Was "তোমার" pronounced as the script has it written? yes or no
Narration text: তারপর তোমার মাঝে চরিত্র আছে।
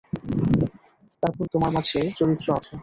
yes